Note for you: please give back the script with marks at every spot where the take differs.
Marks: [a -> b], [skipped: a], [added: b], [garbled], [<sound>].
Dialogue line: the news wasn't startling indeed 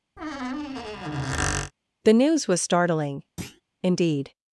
[squeak] the news [wasn't -> was] startling [thud] indeed